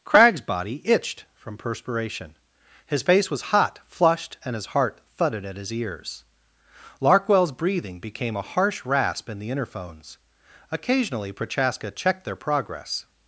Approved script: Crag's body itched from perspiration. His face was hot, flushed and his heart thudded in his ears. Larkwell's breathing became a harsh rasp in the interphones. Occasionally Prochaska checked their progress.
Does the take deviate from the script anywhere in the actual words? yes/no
yes